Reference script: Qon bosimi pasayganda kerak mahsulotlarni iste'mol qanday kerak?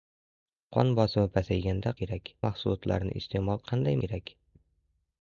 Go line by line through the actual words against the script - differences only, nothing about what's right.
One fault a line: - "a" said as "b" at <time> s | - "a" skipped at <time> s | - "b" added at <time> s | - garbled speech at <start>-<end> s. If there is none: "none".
none